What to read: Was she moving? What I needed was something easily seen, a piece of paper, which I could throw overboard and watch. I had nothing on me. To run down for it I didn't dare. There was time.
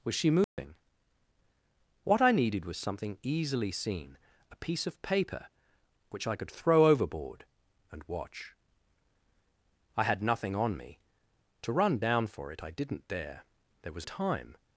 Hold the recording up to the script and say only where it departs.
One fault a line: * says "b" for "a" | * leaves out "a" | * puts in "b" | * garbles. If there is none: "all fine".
all fine